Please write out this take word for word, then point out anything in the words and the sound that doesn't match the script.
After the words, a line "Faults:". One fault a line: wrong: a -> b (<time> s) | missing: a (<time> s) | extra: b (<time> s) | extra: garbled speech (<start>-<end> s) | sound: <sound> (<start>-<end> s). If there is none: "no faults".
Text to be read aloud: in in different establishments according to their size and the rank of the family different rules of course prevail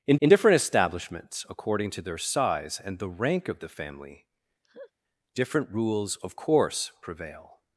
in in different establishments according to their size and the rank of the family different rules of course prevail
Faults:
sound: laugh (4.6-4.9 s)